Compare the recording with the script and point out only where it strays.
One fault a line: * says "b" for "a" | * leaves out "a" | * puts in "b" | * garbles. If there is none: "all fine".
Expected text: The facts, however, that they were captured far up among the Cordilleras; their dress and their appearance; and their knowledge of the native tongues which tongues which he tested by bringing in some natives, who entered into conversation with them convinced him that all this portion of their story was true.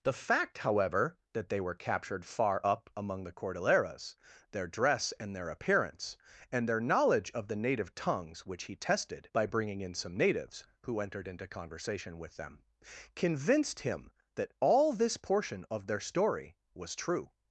* says "fact" for "facts"
* leaves out "tongues which"